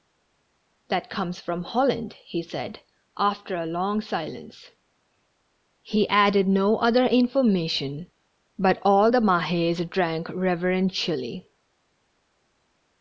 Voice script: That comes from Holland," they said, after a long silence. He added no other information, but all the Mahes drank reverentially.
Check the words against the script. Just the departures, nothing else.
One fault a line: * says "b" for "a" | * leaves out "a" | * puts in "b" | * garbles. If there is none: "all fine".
* says "he" for "they"